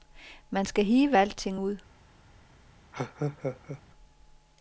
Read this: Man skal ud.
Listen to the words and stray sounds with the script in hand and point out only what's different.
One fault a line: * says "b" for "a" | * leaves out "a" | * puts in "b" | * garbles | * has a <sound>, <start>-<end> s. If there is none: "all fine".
* puts in "hive alting"
* has a laugh, 2.9-3.8 s